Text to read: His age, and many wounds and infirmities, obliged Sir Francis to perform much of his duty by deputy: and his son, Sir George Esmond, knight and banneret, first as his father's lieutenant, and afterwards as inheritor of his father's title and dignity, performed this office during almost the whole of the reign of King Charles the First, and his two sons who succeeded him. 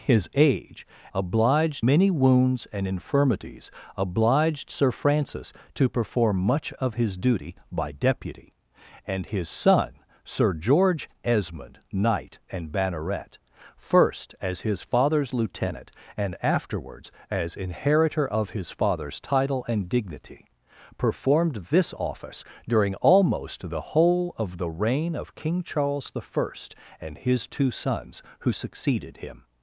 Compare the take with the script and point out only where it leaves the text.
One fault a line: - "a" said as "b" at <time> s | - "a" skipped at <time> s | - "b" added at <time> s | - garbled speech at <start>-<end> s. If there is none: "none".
- "and" said as "obliged" at 1.1 s